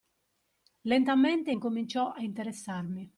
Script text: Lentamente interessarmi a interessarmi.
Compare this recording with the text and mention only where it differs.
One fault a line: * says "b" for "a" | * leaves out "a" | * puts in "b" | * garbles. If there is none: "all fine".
* says "incominciò" for "interessarmi"